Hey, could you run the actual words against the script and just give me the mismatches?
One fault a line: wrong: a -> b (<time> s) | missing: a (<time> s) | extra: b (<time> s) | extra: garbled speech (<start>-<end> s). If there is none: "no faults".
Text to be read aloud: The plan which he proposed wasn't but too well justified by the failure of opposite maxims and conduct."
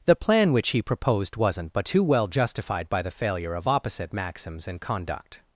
no faults